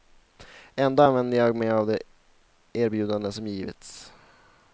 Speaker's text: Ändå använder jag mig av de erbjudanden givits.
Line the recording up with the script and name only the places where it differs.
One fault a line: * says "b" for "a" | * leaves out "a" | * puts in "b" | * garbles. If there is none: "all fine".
* puts in "som"